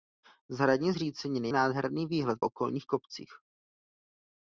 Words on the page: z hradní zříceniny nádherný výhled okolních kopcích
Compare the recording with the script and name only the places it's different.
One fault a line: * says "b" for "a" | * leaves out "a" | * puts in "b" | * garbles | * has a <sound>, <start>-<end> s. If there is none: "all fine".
all fine